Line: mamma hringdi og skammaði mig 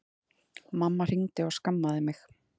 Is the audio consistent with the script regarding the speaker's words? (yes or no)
yes